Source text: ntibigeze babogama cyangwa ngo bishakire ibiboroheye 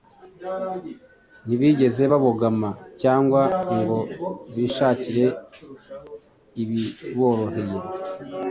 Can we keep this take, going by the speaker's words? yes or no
yes